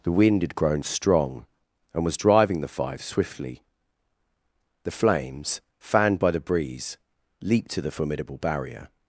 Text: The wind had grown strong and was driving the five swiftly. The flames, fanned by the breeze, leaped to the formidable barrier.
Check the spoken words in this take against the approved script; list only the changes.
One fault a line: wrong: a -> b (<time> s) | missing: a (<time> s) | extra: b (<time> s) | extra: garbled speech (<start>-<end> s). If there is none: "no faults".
no faults